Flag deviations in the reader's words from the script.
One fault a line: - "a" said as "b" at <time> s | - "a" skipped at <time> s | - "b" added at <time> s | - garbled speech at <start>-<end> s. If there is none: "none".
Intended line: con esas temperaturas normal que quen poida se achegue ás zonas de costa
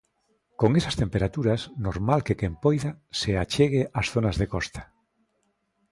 none